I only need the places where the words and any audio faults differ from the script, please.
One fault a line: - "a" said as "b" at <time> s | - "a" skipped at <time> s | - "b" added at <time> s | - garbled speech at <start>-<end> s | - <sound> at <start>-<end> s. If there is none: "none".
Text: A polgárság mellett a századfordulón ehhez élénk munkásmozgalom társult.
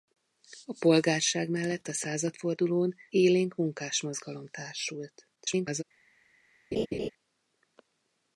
- "ehhez" skipped at 3.0 s
- garbled speech at 5.4-5.8 s
- laugh at 6.7-7.1 s